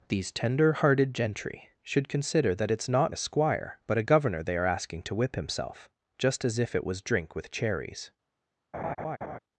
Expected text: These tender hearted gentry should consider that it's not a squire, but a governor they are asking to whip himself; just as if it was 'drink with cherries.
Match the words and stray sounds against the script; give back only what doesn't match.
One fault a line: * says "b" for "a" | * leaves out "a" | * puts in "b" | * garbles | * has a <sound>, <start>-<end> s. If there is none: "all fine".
* has a laugh, 8.7-9.4 s